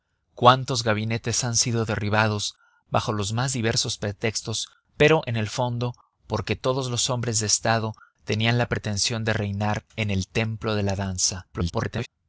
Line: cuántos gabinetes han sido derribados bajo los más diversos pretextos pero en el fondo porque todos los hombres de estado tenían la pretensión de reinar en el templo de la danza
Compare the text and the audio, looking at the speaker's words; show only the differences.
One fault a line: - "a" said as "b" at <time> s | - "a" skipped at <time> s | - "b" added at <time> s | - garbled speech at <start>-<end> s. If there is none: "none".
- garbled speech at 11.5-12.1 s